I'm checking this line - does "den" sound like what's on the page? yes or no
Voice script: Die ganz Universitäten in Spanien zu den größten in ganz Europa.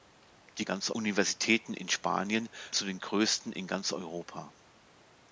yes